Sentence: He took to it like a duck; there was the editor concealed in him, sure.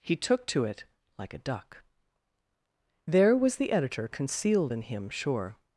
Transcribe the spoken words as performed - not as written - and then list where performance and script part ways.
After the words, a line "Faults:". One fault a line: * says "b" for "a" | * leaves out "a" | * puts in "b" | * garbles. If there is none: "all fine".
He took to it like a duck; there was the editor concealed in him, sure.
Faults:
all fine